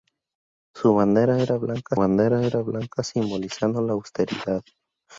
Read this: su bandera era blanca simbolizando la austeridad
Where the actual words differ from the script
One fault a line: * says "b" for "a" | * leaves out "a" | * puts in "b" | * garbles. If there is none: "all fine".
* puts in "bandera era blanca"